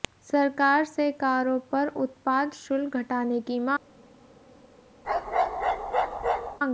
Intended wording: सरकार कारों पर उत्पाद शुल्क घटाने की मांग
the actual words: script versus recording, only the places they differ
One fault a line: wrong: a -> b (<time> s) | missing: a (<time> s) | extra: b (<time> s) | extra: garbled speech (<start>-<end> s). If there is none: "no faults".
extra: से (0.8 s)